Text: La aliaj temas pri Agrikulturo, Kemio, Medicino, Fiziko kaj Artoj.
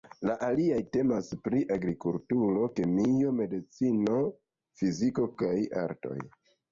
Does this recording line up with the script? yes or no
yes